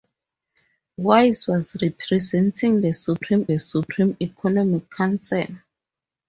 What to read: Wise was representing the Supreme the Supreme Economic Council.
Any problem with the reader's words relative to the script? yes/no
no